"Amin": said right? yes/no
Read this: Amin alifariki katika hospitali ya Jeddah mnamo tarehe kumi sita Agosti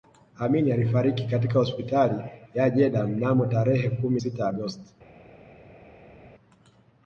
yes